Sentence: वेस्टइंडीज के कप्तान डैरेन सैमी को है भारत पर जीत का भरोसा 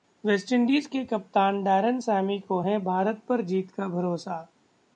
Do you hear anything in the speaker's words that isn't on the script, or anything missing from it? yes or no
no